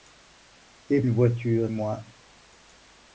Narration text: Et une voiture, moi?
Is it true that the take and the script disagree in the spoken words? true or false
false